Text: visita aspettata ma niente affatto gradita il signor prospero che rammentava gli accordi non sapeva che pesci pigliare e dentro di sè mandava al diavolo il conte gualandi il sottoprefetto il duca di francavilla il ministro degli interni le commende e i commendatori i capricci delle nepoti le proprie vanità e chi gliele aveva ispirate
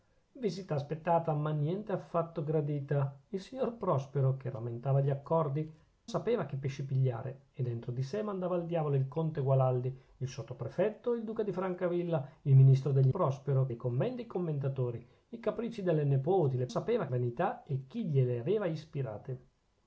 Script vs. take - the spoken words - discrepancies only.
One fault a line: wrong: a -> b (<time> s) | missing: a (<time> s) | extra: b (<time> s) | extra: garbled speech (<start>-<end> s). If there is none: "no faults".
missing: non (5.7 s)
wrong: interni -> prospero (13.1 s)
wrong: proprie -> sapeva (16.7 s)